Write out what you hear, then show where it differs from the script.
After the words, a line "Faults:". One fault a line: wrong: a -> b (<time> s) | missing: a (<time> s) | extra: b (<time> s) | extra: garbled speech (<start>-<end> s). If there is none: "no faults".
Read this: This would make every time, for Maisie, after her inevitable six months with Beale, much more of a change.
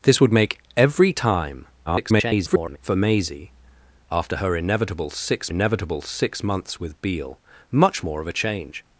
This would make every time, [garbled] for Maisie, after her inevitable six inevitable six months with Beale, much more of a change.
Faults:
extra: garbled speech (1.9-2.8 s)
extra: inevitable six (5.5 s)